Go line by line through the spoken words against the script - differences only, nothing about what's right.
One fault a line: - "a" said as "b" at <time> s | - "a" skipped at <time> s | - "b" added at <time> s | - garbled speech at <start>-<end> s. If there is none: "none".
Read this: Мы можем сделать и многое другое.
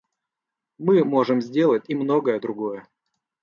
none